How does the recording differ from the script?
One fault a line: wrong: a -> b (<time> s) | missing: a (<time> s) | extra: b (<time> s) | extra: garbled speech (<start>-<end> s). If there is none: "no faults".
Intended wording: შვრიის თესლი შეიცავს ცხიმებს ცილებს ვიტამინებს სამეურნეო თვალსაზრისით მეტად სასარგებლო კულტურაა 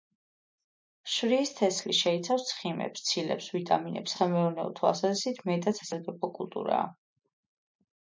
no faults